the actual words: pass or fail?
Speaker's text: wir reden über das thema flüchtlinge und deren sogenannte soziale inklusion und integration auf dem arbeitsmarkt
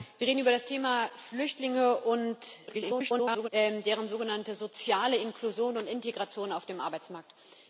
fail